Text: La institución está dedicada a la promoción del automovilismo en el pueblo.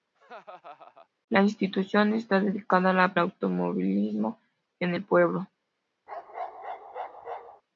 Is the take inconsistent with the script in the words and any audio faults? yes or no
yes